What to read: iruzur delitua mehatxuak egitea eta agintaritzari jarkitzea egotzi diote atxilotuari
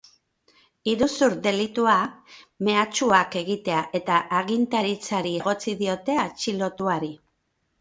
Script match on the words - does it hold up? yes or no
no